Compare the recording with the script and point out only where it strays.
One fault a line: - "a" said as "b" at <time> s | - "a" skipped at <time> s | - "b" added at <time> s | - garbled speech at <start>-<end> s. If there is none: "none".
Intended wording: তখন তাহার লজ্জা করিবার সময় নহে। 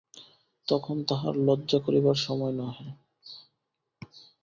none